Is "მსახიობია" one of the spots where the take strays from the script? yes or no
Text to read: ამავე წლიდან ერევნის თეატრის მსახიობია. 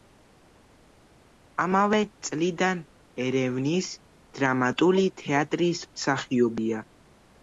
no